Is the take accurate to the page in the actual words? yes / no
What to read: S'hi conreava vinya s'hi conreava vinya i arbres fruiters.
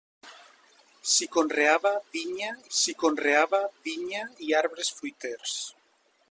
yes